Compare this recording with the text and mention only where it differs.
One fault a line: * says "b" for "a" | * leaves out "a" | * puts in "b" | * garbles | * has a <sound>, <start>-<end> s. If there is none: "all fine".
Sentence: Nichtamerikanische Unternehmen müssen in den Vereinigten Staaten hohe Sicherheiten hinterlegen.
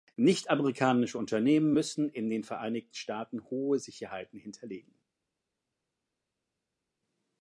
all fine